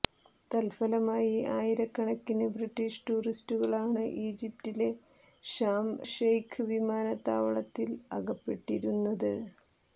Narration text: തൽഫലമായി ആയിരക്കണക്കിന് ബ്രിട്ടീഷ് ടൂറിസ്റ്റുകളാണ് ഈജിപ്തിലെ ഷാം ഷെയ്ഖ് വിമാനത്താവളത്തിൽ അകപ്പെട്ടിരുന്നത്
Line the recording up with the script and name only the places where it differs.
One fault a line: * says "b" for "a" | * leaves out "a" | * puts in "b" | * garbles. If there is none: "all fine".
all fine